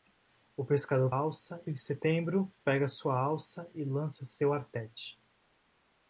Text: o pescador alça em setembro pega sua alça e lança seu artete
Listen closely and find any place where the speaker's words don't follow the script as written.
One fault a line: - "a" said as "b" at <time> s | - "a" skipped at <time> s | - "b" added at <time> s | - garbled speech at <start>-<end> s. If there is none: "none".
none